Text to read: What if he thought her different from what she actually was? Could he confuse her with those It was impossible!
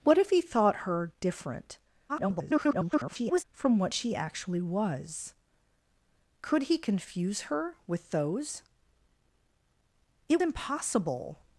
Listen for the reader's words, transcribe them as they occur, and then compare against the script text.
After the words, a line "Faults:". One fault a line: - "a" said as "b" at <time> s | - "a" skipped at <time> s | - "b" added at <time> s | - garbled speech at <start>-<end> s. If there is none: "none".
What if he thought her different [garbled] from what she actually was? Could he confuse her with those It impossible!
Faults:
- garbled speech at 2.1-3.4 s
- "was" skipped at 10.4 s